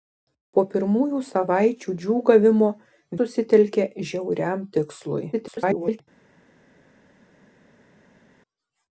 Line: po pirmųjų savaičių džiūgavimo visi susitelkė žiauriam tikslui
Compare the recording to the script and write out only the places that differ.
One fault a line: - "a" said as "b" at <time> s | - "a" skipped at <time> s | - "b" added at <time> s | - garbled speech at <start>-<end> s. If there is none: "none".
- "visi" skipped at 2.7 s
- garbled speech at 5.3-6.0 s